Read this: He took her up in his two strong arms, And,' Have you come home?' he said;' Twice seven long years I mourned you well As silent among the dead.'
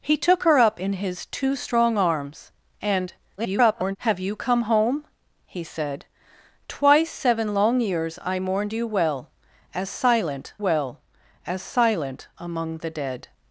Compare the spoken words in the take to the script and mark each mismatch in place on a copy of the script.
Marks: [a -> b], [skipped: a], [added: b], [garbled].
He took her up in his two strong arms, And,' [garbled] Have you come home?' he said;' Twice seven long years I mourned you well As silent [added: well As silent] among the dead.'